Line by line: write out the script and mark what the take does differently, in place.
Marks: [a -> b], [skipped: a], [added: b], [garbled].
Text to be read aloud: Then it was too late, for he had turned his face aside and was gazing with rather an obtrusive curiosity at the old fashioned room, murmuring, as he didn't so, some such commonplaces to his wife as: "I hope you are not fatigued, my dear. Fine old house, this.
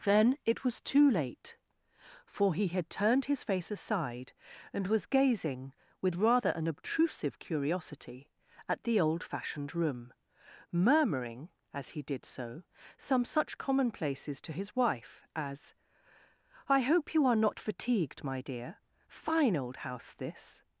Then it was too late, for he had turned his face aside and was gazing with rather an obtrusive curiosity at the old fashioned room, murmuring, as he [didn't -> did] so, some such commonplaces to his wife as: "I hope you are not fatigued, my dear. Fine old house, this.